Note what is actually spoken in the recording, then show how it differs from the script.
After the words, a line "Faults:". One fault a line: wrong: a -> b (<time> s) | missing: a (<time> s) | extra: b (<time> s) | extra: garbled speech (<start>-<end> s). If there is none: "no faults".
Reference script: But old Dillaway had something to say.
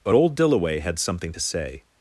But old Dillaway had something to say.
Faults:
no faults